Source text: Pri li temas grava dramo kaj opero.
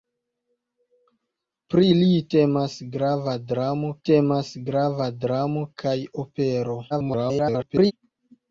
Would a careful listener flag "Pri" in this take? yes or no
no